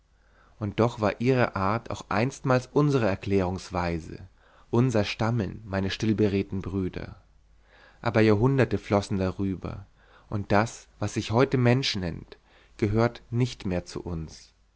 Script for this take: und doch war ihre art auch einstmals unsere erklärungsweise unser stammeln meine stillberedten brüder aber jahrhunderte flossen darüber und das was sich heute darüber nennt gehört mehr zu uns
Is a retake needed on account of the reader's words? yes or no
yes